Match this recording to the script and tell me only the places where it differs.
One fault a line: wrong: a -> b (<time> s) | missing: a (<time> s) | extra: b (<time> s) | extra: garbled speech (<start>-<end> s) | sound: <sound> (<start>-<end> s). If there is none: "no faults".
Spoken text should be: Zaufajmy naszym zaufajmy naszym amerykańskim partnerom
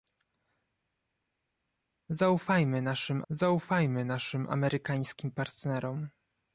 no faults